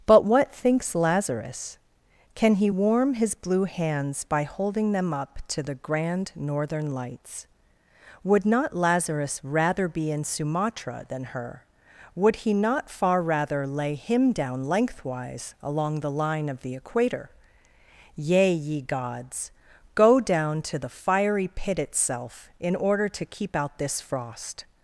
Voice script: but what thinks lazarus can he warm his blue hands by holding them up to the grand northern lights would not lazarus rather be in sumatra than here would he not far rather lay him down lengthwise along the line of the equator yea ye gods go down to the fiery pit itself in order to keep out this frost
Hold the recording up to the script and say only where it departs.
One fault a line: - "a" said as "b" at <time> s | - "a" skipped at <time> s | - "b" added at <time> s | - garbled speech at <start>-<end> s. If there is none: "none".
- "here" said as "her" at 11.3 s